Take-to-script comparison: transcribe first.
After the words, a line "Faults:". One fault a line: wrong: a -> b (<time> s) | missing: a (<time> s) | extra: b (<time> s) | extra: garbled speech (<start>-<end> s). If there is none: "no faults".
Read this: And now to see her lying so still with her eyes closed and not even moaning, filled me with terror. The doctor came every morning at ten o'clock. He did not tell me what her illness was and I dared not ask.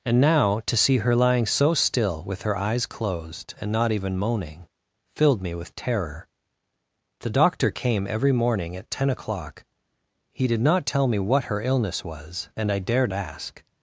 And now to see her lying so still with her eyes closed and not even moaning, filled me with terror. The doctor came every morning at ten o'clock. He did not tell me what her illness was and I dared ask.
Faults:
missing: not (13.1 s)